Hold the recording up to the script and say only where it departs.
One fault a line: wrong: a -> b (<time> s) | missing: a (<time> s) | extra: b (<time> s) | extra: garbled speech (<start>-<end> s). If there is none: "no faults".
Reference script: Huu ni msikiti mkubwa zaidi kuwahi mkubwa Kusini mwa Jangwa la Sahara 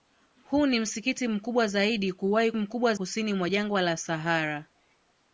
no faults